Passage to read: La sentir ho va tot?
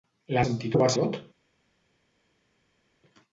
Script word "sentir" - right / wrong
right